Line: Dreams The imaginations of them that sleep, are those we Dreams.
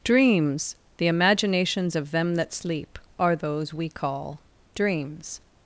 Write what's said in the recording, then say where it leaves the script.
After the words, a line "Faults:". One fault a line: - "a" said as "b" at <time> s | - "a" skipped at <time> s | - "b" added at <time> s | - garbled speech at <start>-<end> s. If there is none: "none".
Dreams The imaginations of them that sleep, are those we call Dreams.
Faults:
- "call" added at 3.9 s